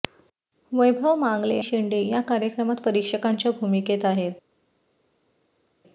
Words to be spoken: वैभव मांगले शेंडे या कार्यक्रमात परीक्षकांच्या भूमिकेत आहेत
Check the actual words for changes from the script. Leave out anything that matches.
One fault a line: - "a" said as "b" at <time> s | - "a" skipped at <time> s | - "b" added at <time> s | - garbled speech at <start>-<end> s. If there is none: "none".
none